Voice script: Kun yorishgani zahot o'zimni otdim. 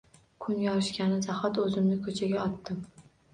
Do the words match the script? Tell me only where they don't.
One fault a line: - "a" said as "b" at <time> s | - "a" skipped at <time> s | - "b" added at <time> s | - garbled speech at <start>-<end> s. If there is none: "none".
- "ko'chaga" added at 2.1 s